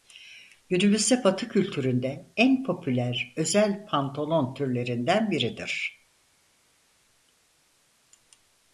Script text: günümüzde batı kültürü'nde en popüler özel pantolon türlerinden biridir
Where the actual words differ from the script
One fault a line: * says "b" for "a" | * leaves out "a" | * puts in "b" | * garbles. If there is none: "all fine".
all fine